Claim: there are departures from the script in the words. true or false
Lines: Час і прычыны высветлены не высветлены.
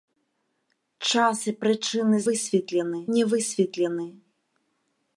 false